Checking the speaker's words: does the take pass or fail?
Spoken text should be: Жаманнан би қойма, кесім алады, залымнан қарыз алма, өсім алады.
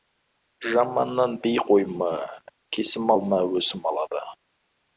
fail